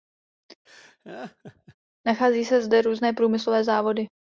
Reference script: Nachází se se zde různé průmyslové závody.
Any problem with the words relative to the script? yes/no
yes